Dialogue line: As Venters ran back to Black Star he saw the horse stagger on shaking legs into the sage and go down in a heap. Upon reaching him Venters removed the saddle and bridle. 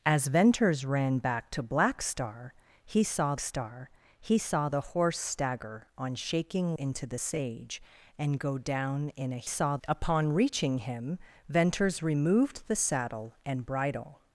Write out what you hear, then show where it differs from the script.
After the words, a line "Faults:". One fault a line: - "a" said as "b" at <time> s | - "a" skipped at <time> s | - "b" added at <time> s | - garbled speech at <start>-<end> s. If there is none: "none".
As Venters ran back to Black Star he saw Star he saw the horse stagger on shaking into the sage and go down in a saw. Upon reaching him Venters removed the saddle and bridle.
Faults:
- "Star he saw" added at 3.4 s
- "legs" skipped at 6.8 s
- "heap" said as "saw" at 9.4 s